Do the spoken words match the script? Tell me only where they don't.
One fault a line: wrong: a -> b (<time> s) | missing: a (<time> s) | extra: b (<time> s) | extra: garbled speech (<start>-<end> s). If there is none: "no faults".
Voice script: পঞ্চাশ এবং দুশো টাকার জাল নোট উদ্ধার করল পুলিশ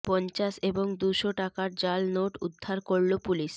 no faults